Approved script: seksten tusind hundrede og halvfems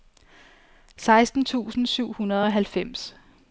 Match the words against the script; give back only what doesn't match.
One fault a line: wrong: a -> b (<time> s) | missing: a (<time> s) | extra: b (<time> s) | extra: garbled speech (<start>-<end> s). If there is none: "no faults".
extra: syv (1.8 s)